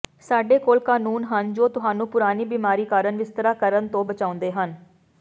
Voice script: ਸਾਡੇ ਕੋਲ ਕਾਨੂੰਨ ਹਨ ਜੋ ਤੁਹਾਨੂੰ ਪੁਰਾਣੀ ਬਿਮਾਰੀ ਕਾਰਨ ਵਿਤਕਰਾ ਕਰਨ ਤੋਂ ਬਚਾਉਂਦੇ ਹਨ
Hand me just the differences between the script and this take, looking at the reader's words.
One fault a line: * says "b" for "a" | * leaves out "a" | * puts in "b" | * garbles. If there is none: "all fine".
all fine